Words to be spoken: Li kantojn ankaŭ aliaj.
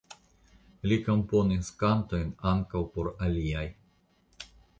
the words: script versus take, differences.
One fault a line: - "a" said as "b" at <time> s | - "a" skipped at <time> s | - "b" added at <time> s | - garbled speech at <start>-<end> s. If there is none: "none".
- "komponis" added at 1.1 s
- "por" added at 3.0 s